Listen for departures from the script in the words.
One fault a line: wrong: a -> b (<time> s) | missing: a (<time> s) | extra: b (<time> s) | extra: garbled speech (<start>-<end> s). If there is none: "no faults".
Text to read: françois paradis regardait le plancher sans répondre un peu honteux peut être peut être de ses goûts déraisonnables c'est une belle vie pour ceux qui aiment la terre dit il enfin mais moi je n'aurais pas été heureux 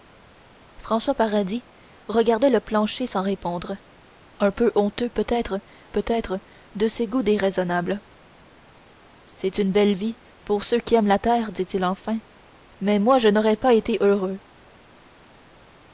no faults